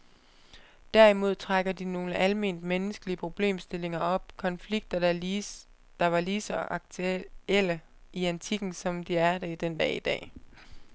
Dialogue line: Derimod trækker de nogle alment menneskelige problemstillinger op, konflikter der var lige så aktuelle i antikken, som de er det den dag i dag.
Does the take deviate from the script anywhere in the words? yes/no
no